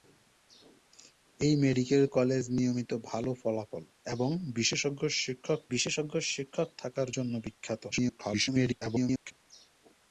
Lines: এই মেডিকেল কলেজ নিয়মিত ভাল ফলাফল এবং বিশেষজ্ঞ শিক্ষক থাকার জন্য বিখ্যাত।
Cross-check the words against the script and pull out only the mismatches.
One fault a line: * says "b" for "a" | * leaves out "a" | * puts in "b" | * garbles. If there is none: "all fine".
* puts in "বিশেষজ্ঞ শিক্ষক"
* garbles